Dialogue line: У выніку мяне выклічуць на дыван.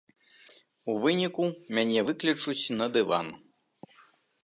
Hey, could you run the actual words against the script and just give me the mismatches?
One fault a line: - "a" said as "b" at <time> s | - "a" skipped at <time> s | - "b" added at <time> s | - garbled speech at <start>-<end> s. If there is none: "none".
none